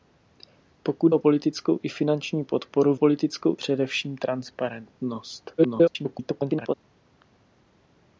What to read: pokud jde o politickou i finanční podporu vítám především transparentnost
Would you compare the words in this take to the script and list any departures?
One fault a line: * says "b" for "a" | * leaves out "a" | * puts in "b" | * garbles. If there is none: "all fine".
* leaves out "jde"
* says "politickou" for "vítám"
* garbles